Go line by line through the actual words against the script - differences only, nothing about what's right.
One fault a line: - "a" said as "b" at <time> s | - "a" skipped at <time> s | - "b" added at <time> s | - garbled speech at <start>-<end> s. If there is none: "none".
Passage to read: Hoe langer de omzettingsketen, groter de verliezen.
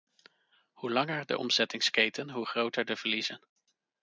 - "hoe" added at 2.3 s